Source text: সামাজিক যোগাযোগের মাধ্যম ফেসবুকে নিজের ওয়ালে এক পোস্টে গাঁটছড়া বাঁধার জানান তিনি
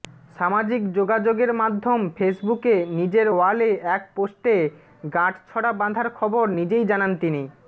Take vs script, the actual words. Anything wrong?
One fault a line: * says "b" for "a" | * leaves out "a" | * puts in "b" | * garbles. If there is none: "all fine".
* puts in "খবর নিজেই"